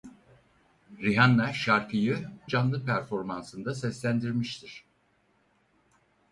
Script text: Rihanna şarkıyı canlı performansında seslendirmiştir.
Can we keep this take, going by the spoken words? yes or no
yes